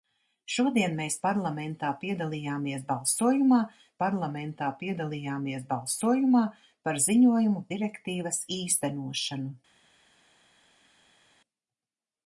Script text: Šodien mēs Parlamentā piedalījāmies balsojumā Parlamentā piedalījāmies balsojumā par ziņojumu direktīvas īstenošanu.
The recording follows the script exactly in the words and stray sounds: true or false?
true